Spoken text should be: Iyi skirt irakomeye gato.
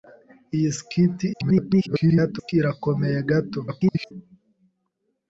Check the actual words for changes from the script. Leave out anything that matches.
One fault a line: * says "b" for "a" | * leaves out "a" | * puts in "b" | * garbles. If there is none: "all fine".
* garbles
* garbles